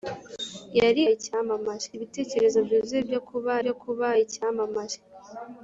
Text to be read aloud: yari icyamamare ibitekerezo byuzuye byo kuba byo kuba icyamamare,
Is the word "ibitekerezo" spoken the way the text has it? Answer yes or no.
yes